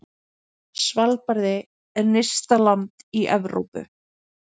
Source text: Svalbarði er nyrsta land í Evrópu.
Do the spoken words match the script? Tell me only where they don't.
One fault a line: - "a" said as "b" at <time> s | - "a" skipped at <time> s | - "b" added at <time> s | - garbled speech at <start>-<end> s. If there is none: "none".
none